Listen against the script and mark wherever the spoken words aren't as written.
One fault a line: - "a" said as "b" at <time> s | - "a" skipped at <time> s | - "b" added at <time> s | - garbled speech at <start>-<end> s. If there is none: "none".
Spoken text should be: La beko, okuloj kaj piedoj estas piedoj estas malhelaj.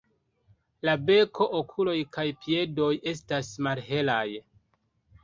- "piedoj estas" skipped at 3.5 s